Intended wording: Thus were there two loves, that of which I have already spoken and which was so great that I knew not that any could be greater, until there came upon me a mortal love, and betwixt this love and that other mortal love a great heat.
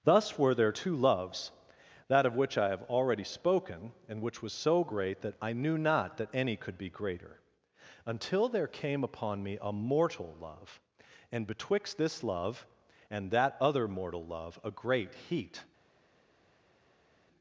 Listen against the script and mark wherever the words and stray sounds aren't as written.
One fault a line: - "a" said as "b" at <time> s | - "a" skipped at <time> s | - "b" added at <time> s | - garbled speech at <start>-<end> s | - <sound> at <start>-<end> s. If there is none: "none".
none